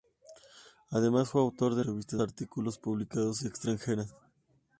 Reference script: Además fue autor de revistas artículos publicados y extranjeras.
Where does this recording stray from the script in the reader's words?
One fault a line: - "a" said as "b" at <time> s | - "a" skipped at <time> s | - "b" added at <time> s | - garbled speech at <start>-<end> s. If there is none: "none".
none